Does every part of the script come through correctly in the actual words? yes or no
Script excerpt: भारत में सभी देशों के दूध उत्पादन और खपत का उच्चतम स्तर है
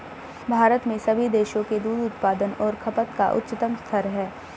yes